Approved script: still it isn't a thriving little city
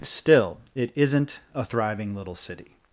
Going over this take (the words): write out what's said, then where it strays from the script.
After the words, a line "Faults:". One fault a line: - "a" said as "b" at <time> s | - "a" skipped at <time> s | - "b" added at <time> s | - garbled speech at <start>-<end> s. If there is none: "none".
still it isn't a thriving little city
Faults:
none